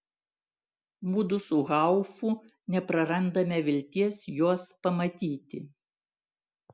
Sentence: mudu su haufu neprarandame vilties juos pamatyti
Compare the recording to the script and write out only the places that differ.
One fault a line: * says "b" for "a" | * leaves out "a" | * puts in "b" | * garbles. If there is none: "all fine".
all fine